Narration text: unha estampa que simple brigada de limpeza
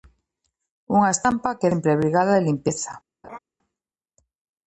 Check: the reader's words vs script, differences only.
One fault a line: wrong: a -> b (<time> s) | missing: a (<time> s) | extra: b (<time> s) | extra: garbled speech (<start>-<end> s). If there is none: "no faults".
no faults